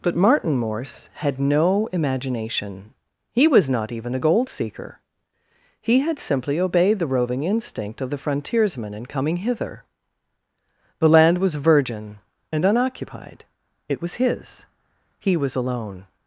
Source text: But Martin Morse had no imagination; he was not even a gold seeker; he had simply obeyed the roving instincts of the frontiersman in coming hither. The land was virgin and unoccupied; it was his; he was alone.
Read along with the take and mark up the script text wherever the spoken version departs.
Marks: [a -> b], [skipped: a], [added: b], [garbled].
But Martin Morse had no imagination; he was not even a gold seeker; he had simply obeyed the roving [instincts -> instinct] of the frontiersman in coming hither. The land was virgin and unoccupied; it was his; he was alone.